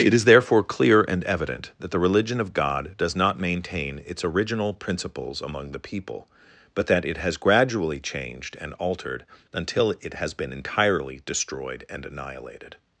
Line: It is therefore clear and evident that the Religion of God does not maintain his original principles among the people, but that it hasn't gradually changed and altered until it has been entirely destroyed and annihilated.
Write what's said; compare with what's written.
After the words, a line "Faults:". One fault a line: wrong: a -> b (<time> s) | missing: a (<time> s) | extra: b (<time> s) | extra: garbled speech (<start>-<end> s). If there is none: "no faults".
It is therefore clear and evident that the Religion of God does not maintain its original principles among the people, but that it has gradually changed and altered until it has been entirely destroyed and annihilated.
Faults:
wrong: his -> its (4.0 s)
wrong: hasn't -> has (7.2 s)